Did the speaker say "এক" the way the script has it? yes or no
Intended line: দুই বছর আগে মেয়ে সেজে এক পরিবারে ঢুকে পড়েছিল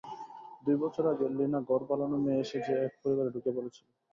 yes